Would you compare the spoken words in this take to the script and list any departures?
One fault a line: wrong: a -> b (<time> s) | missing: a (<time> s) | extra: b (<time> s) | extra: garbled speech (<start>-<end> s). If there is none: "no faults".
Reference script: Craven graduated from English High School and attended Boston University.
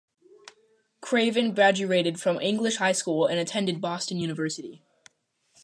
no faults